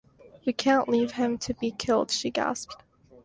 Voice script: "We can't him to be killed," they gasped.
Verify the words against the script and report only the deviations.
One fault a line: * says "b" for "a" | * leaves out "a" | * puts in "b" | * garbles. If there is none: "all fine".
* puts in "leave"
* says "she" for "they"